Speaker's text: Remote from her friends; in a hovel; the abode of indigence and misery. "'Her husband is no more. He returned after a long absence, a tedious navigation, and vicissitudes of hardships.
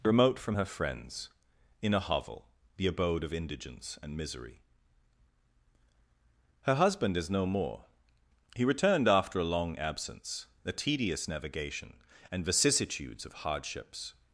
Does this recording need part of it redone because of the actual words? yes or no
no